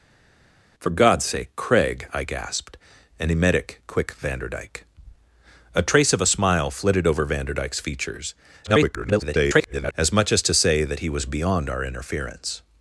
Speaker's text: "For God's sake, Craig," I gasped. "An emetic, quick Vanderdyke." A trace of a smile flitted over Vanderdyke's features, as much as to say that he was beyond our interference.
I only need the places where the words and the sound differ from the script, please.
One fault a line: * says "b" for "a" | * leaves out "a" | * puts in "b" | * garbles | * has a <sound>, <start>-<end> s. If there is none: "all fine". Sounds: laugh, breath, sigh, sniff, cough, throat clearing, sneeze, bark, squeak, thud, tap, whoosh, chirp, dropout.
* garbles